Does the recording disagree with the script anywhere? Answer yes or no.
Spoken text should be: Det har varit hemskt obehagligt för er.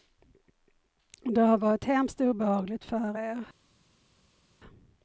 no